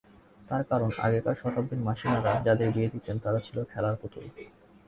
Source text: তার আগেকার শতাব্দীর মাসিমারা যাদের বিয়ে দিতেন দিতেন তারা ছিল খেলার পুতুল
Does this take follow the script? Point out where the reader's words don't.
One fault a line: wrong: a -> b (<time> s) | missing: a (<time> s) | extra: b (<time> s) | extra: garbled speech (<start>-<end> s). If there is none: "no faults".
extra: কারণ (0.6 s)
missing: দিতেন (3.2 s)